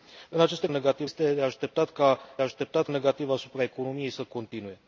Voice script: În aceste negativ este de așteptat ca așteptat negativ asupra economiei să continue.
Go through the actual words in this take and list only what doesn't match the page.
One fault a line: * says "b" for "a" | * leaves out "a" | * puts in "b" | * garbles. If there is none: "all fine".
all fine